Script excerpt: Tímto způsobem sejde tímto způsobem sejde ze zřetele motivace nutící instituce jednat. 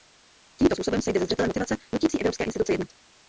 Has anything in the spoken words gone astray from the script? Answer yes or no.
yes